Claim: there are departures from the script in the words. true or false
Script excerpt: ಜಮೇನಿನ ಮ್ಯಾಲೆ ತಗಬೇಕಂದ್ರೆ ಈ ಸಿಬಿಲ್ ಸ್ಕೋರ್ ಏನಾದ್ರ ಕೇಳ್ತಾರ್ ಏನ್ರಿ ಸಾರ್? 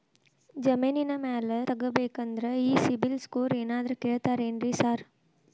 false